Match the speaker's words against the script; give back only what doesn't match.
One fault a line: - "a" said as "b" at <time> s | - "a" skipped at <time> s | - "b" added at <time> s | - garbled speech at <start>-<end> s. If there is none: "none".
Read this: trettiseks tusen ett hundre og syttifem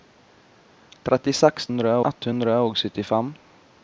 - "tusen" said as "hundre" at 1.7 s